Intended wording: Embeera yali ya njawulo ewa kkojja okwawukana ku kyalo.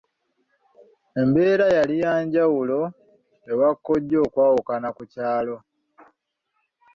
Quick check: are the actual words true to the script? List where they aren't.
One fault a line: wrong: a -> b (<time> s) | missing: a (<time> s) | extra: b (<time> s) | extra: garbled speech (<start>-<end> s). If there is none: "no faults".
no faults